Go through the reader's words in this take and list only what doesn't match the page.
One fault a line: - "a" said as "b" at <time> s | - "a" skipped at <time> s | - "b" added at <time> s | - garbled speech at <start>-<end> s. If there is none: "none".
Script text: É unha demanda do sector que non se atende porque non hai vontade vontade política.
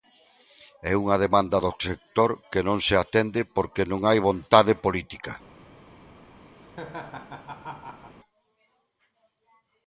- "vontade" skipped at 4.7 s